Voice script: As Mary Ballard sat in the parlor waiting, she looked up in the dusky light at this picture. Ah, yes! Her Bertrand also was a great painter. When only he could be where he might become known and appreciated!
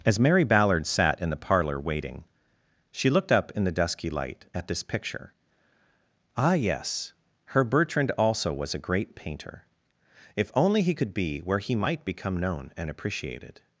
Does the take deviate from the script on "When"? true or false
true